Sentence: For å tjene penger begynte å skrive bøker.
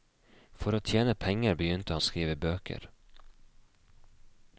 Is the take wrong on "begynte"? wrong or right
right